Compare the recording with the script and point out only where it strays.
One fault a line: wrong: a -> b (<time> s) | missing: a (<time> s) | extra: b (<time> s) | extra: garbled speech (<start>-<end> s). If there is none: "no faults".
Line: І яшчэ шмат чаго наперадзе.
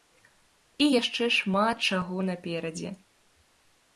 no faults